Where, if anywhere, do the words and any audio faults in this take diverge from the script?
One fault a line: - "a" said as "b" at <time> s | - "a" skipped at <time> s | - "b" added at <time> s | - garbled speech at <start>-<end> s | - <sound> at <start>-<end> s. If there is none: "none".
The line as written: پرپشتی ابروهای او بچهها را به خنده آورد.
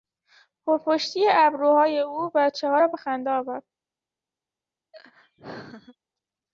- laugh at 4.9-6.0 s